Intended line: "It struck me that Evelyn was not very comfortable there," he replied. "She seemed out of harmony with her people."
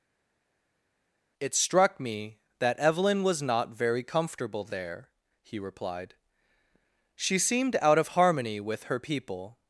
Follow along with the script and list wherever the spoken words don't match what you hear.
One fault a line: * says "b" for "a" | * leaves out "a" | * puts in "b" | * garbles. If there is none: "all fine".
all fine